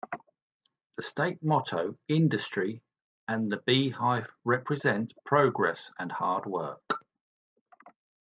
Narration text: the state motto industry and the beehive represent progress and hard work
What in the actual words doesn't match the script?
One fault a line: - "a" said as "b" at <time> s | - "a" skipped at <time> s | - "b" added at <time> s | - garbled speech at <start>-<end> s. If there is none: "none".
none